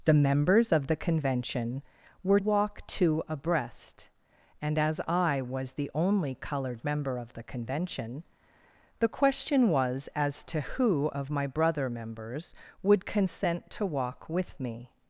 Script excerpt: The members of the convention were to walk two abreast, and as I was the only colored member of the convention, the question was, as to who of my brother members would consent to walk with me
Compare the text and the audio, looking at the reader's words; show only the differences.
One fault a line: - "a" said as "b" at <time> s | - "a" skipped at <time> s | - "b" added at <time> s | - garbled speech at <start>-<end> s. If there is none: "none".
- "to" skipped at 2.4 s